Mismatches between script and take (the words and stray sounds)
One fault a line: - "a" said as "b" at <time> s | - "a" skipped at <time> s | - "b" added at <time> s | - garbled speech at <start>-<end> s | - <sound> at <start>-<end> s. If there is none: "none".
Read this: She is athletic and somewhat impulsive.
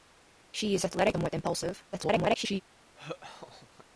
- "and" skipped at 1.2 s
- garbled speech at 1.9-2.6 s
- laugh at 2.9-3.9 s